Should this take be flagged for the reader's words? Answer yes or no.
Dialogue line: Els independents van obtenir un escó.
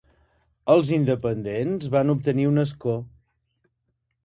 no